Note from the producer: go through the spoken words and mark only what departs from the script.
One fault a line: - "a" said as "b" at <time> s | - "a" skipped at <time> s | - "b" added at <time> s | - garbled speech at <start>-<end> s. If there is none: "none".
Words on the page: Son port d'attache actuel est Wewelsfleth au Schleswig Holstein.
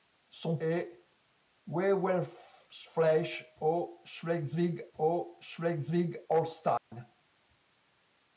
- "port d'attache actuel est Wewelsfleth" said as "est Wewelsfleth au Schleswig" at 0.6 s